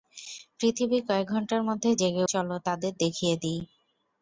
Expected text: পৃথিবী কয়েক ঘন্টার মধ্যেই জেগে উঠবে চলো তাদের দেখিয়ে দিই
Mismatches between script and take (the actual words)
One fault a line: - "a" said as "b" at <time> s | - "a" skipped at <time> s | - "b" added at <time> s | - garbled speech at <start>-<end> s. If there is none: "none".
- "উঠবে" skipped at 2.2 s